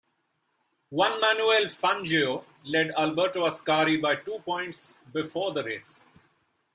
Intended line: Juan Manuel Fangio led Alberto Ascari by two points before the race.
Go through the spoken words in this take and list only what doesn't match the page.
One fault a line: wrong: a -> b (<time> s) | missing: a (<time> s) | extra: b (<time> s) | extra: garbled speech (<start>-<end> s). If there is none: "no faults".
no faults